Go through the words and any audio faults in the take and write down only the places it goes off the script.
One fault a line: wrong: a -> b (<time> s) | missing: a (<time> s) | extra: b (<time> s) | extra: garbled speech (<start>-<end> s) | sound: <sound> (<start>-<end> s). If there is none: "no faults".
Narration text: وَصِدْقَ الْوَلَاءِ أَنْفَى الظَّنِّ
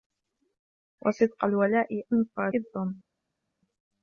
no faults